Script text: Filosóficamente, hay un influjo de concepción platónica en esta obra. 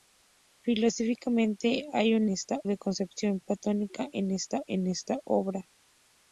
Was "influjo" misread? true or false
true